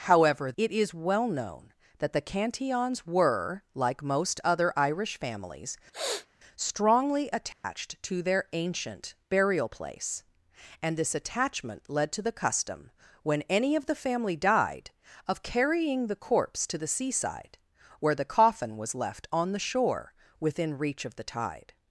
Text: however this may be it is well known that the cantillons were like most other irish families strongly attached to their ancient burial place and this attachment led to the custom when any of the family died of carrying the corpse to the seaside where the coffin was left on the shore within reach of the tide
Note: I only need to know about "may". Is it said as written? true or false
false